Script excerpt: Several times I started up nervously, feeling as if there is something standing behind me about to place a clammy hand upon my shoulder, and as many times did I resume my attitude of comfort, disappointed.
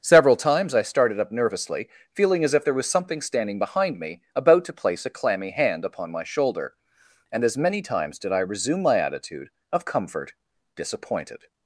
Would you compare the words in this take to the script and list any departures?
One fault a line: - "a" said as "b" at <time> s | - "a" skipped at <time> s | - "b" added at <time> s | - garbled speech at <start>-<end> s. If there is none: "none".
- "is" said as "was" at 2.7 s